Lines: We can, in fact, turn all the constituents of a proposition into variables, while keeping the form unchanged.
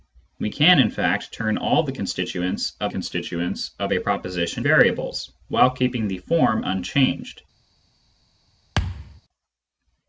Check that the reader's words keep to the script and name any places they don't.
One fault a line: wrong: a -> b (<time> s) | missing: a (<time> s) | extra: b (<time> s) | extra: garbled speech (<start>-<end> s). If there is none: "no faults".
extra: constituents of (2.9 s)
missing: into (4.7 s)